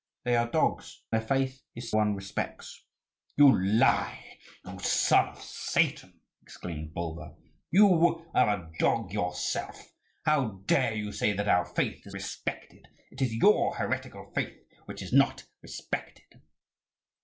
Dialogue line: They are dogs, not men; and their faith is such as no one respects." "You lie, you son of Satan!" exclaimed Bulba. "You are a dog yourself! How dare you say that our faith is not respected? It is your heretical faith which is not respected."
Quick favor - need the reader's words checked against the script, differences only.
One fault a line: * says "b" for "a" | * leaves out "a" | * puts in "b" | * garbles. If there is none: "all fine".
* leaves out "not men and"
* leaves out "such as no"
* leaves out "not"